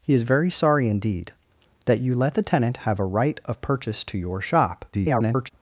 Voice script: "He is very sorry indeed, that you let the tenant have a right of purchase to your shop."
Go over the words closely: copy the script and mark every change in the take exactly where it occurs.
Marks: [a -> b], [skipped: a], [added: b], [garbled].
"He is very sorry indeed, that you let the tenant have a right of purchase to your shop." [garbled]